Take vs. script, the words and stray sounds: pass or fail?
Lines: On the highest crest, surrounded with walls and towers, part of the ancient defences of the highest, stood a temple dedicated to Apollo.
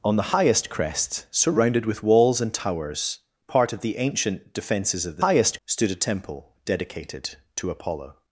pass